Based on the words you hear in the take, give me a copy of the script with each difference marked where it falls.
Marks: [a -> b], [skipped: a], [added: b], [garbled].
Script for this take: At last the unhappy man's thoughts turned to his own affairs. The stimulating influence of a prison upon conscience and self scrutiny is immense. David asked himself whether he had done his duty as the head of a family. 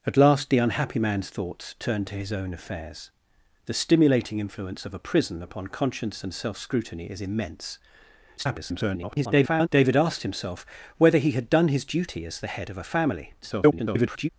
At last the unhappy man's thoughts turned to his own affairs. The stimulating influence of a prison upon conscience and self scrutiny is immense. [garbled] David asked himself whether he had done his duty as the head of a family. [garbled]